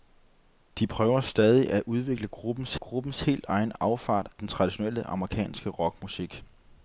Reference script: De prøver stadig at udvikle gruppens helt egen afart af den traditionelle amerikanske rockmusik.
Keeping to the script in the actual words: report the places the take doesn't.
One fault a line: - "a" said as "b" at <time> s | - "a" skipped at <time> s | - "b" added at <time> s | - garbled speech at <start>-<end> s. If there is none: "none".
- "gruppens" added at 2.8 s
- "af" skipped at 4.3 s